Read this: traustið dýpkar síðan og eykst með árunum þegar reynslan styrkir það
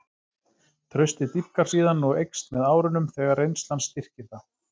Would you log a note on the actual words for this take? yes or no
no